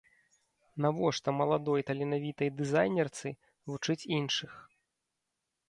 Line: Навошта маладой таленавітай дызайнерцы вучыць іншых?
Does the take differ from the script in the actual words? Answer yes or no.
no